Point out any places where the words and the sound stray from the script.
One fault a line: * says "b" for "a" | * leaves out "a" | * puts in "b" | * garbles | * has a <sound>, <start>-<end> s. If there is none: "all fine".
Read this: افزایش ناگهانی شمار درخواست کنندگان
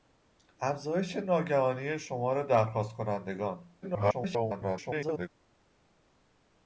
* garbles